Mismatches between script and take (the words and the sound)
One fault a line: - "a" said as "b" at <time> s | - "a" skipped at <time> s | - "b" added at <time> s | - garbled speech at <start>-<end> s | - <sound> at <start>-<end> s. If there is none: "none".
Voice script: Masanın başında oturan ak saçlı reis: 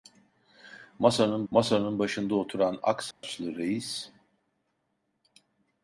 - "masanın" added at 1.5 s
- dropout at 3.1-3.2 s